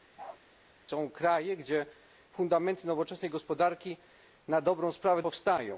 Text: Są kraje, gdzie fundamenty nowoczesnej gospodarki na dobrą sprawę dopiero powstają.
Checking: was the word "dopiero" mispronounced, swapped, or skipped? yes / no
yes